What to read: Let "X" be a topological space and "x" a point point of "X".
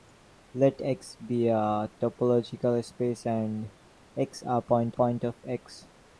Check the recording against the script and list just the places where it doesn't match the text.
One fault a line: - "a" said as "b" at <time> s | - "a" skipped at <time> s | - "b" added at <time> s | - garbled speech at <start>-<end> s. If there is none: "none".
none